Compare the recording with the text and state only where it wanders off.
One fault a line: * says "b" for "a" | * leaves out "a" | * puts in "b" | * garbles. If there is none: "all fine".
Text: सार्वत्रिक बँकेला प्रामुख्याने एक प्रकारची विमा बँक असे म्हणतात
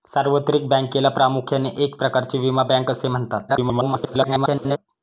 * garbles